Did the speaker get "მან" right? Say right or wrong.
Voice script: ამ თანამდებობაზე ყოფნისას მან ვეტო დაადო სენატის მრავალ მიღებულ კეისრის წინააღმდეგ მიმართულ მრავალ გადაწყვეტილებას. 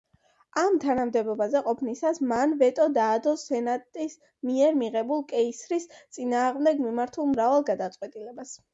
right